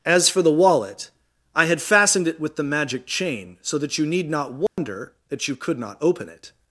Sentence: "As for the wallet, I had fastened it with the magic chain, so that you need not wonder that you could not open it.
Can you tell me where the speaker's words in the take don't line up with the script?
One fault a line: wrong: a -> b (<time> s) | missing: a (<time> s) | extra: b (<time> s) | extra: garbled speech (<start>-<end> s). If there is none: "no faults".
no faults